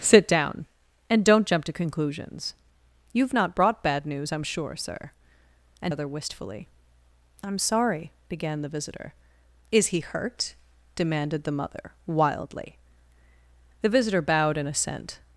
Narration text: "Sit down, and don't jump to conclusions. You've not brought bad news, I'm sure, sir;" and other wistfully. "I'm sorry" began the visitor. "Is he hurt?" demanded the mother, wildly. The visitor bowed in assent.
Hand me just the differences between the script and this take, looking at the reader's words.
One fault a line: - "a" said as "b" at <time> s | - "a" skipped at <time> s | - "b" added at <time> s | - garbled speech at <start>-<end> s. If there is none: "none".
none